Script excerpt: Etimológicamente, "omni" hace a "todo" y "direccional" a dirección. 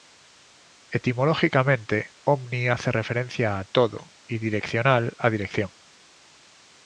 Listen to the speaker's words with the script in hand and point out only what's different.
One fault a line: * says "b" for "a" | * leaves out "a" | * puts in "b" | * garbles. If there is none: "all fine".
* puts in "referencia"